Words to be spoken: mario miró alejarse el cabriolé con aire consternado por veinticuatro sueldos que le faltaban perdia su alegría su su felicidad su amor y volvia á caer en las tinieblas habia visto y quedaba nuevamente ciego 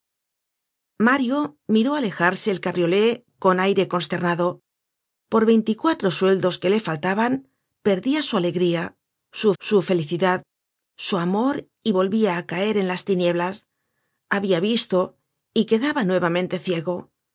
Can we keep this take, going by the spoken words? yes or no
yes